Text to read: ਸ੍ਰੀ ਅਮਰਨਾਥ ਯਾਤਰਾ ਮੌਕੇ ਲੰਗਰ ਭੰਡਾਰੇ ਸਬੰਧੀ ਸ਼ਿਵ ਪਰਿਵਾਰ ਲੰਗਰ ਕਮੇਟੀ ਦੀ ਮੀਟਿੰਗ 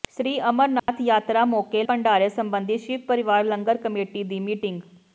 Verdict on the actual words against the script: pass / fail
fail